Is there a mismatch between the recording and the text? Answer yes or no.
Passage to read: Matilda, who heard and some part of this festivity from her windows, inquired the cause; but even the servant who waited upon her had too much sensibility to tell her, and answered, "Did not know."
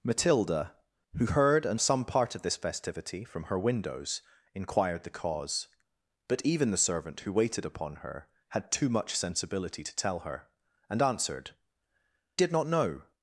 no